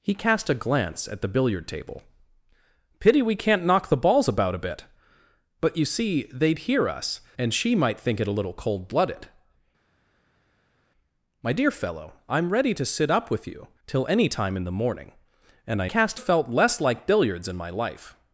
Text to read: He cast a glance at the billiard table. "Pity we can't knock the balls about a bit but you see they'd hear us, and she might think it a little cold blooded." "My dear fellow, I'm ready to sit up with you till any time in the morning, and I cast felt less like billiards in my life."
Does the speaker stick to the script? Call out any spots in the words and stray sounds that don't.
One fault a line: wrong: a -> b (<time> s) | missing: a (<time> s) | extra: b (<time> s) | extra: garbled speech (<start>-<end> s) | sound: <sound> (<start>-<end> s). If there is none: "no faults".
no faults